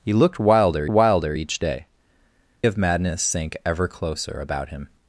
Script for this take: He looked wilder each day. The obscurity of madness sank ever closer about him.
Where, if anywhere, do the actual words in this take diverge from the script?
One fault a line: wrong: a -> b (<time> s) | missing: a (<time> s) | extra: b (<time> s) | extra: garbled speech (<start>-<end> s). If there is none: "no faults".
extra: wilder (0.9 s)
missing: The obscurity (1.9 s)